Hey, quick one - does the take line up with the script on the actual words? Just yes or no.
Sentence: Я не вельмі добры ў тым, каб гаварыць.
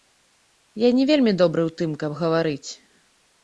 yes